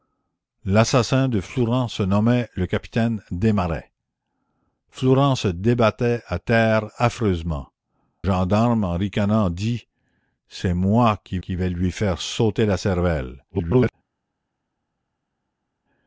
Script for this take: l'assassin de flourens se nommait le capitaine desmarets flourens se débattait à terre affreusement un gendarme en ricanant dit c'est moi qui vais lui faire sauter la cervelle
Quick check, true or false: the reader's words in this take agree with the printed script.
false